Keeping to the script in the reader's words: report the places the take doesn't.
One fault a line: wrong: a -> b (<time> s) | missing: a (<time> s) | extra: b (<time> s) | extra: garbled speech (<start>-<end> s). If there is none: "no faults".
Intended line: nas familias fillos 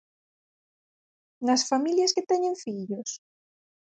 extra: que teñen (2.1 s)